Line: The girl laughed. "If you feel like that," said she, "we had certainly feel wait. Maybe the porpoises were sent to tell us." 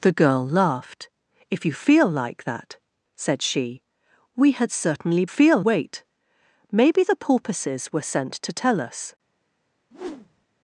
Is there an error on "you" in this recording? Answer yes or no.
no